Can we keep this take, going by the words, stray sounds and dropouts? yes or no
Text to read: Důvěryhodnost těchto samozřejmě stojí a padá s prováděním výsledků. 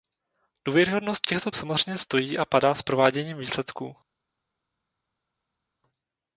yes